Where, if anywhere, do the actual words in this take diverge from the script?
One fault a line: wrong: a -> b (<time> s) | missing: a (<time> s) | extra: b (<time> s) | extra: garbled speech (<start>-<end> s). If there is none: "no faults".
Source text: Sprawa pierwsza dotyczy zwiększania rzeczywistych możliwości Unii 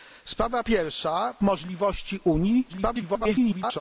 missing: dotyczy zwiększania rzeczywistych (1.3 s)
extra: garbled speech (2.7-3.8 s)